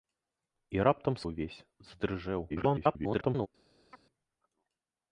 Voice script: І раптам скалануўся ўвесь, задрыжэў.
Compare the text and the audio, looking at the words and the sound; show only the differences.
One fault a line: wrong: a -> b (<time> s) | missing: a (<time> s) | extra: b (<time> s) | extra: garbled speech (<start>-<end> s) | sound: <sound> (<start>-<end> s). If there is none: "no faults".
missing: скалануўся (1.2 s)
extra: garbled speech (2.5-3.5 s)
sound: chirp (3.9-4.0 s)